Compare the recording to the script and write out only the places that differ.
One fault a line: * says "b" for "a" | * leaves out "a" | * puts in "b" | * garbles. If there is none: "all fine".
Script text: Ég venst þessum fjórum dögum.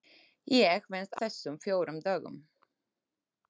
all fine